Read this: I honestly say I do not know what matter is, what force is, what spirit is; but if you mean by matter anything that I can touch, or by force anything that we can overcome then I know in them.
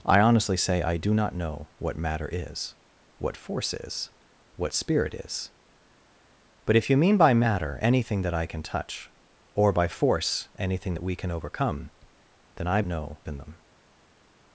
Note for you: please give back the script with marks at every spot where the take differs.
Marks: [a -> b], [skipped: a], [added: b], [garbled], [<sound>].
I honestly say I do not know what matter is, what force is, what spirit is; but if you mean by matter anything that I can touch, or by force anything that we can overcome then I know in them.